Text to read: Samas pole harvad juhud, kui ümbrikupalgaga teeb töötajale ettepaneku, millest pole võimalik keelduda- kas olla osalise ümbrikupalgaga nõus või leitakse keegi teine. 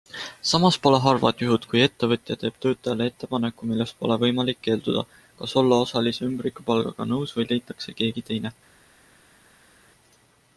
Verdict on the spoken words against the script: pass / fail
fail